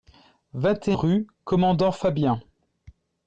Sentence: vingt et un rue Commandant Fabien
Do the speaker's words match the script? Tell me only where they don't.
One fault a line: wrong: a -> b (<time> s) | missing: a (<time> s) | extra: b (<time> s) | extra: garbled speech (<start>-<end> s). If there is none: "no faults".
missing: un (0.9 s)